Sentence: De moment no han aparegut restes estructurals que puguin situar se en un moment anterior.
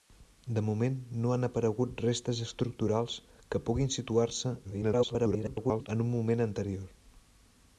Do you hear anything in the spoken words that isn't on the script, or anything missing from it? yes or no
yes